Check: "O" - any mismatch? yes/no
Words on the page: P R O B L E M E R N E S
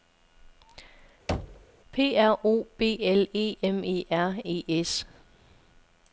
no